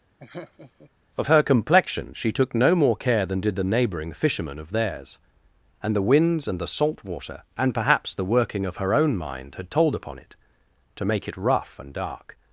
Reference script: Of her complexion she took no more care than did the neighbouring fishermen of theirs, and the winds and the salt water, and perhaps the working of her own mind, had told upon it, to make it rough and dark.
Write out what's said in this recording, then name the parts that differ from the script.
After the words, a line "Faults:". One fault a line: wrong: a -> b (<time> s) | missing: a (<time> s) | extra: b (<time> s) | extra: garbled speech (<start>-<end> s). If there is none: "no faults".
Of her complexion she took no more care than did the neighbouring fishermen of theirs, and the winds and the salt water, and perhaps the working of her own mind, had told upon it, to make it rough and dark.
Faults:
no faults